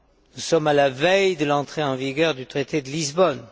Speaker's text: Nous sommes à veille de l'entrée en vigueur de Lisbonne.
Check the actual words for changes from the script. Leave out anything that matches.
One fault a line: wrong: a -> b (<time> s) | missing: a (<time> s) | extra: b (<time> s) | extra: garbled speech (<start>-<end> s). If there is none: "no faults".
extra: la (0.7 s)
extra: du traité (2.4 s)